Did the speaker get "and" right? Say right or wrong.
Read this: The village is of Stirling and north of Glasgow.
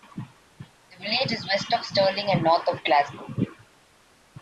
right